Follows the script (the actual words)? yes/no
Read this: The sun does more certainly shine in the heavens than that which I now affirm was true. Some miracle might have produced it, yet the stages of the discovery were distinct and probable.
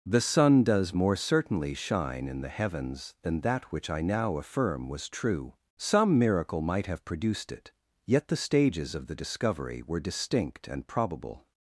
yes